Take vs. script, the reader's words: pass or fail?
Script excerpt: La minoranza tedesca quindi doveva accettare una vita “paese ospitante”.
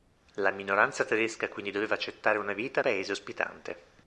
pass